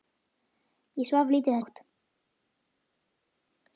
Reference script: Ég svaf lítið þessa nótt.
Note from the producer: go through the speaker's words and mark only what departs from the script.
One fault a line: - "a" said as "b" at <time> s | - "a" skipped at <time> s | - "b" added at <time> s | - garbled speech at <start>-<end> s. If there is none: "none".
- "þessa" skipped at 1.6 s